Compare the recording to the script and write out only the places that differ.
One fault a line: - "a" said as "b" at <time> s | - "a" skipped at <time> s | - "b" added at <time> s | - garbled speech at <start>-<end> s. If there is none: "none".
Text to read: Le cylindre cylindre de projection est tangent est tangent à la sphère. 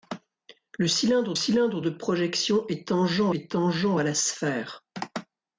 none